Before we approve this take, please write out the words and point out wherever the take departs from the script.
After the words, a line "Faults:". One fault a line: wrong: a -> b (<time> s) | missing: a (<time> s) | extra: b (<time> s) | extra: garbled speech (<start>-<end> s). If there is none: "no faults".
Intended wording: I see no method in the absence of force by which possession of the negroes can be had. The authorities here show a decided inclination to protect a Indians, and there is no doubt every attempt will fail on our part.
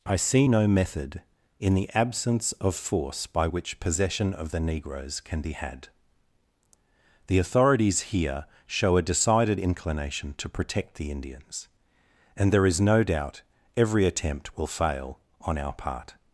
I see no method in the absence of force by which possession of the negroes can be had. The authorities here show a decided inclination to protect the Indians, and there is no doubt every attempt will fail on our part.
Faults:
wrong: a -> the (10.9 s)